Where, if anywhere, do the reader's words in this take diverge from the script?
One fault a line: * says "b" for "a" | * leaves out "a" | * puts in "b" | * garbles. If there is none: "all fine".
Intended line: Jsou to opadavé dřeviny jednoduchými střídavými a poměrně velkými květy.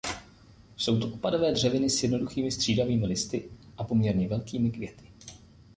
* puts in "s"
* puts in "listy"